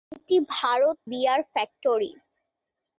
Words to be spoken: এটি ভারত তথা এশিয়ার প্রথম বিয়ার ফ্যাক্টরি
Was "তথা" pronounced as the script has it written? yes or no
no